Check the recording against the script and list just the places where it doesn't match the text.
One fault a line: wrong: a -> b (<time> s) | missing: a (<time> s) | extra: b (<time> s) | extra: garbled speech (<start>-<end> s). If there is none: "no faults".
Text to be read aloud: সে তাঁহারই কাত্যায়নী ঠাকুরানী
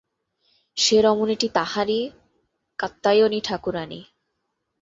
extra: রমণীটি (1.0 s)